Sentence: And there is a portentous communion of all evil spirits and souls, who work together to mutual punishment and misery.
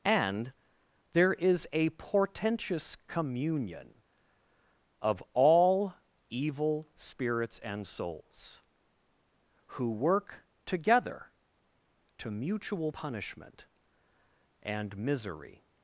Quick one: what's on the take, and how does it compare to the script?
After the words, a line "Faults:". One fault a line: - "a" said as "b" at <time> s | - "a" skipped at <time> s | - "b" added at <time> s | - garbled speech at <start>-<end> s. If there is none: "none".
And there is a portentous communion of all evil spirits and souls, who work together to mutual punishment and misery.
Faults:
none